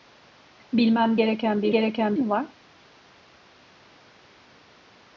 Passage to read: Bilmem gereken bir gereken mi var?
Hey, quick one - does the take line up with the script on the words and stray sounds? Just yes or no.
yes